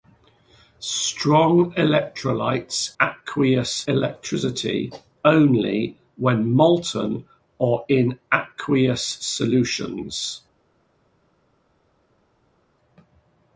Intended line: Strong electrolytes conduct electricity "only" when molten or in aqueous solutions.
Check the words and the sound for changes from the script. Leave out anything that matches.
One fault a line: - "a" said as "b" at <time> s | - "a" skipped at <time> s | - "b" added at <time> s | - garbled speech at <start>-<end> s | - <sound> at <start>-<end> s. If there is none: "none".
- "conduct" said as "aqueous" at 3.0 s